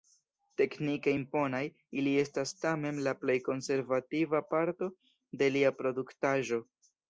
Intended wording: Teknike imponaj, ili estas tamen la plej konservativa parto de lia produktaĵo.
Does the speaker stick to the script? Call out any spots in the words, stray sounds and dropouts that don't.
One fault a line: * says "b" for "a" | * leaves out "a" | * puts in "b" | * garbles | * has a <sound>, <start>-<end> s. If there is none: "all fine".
all fine